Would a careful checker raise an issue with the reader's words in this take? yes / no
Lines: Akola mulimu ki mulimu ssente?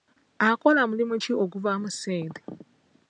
yes